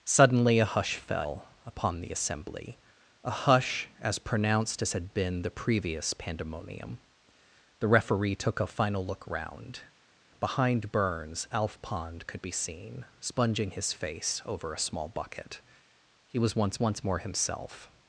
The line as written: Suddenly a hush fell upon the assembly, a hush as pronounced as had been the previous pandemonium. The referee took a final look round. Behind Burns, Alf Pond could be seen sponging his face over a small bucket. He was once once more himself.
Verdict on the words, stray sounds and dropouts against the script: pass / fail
pass